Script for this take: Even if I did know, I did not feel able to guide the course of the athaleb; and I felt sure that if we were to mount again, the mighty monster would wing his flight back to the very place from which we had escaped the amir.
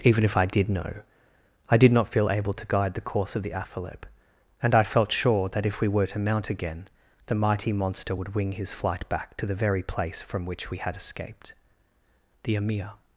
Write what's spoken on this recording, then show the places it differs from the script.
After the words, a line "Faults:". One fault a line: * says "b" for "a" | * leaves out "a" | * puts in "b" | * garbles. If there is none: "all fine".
Even if I did know, I did not feel able to guide the course of the athaleb; and I felt sure that if we were to mount again, the mighty monster would wing his flight back to the very place from which we had escaped the amir.
Faults:
all fine